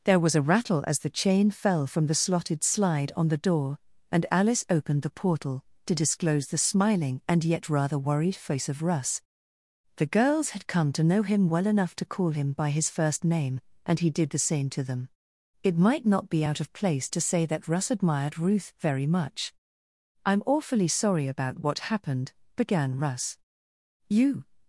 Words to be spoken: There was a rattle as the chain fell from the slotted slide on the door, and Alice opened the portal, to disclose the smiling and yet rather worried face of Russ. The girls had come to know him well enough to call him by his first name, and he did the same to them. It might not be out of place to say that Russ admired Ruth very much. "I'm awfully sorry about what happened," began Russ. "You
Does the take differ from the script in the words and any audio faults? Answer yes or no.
no